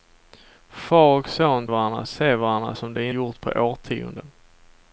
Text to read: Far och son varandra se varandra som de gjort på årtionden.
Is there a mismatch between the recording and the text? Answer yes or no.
no